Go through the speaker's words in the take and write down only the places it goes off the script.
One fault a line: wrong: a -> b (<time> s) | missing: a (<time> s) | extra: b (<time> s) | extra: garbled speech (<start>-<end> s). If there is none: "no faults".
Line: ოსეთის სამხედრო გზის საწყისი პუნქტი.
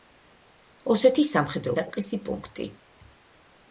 missing: გზის (1.8 s)